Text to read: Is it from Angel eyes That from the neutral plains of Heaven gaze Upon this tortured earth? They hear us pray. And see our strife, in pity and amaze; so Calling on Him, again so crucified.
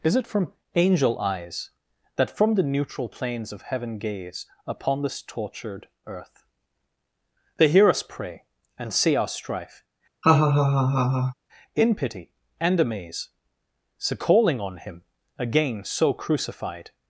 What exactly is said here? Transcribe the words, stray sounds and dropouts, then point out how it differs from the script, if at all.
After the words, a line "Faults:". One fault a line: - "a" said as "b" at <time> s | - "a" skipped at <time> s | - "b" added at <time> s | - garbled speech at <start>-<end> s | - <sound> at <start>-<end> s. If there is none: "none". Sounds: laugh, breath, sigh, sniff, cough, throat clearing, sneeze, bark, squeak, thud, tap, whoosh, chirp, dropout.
Is it from Angel eyes That from the neutral plains of Heaven gaze Upon this tortured earth? They hear us pray. And see our strife, in pity and amaze; so Calling on Him, again so crucified.
Faults:
- laugh at 10.2-11.3 s